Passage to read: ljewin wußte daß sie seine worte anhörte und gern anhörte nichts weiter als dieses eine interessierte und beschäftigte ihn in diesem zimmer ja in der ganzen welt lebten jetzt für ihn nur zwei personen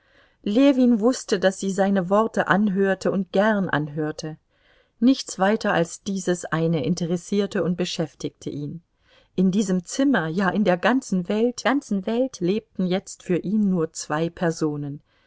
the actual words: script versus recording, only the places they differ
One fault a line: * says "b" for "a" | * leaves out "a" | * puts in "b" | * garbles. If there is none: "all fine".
* puts in "ganzen welt"